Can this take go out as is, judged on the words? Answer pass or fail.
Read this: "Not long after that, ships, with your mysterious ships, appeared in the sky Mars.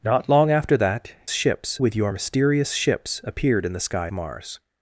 pass